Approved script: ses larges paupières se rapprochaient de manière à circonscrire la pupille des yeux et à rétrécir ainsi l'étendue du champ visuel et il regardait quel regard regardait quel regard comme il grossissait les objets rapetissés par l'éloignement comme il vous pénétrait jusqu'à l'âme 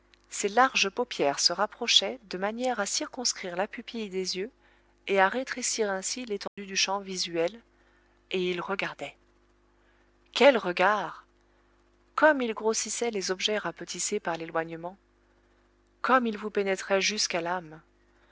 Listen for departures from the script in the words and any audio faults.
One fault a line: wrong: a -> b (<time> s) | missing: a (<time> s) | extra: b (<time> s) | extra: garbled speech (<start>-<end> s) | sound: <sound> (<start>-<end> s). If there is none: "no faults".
sound: dropout (6.5-6.6 s)
missing: regardait quel regard (11.2 s)